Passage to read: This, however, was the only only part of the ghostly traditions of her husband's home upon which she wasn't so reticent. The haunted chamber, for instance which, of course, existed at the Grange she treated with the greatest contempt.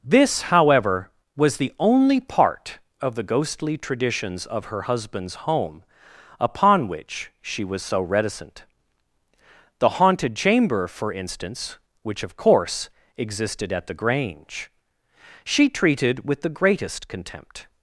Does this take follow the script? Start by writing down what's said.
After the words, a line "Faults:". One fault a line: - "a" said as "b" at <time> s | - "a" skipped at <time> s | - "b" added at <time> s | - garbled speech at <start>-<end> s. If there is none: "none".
This, however, was the only part of the ghostly traditions of her husband's home upon which she was so reticent. The haunted chamber, for instance which, of course, existed at the Grange she treated with the greatest contempt.
Faults:
- "only" skipped at 2.2 s
- "wasn't" said as "was" at 7.6 s